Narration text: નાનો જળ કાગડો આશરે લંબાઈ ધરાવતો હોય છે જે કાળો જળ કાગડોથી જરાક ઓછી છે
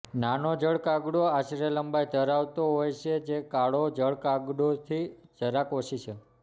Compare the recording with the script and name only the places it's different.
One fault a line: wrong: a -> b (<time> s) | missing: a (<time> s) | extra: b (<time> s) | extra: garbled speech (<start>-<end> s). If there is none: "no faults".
no faults